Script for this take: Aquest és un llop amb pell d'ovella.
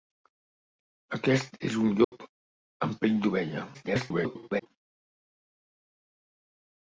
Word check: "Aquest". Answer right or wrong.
right